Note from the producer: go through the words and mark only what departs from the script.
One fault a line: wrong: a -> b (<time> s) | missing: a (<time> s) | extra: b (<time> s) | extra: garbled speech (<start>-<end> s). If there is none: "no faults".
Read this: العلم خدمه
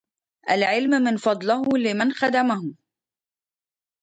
extra: من فضله لمن (0.9 s)